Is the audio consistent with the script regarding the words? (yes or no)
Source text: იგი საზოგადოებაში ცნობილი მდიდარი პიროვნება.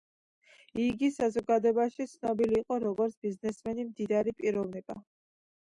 no